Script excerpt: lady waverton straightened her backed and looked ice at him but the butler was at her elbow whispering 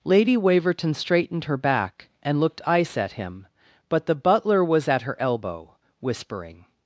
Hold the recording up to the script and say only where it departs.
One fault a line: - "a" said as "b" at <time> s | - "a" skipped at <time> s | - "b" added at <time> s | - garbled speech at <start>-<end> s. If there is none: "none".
- "backed" said as "back" at 1.6 s